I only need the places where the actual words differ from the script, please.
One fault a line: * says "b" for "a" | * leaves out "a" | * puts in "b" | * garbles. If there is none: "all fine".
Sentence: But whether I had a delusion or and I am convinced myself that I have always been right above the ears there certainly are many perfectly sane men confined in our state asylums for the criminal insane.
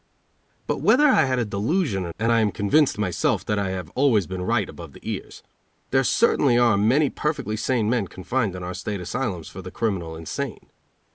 all fine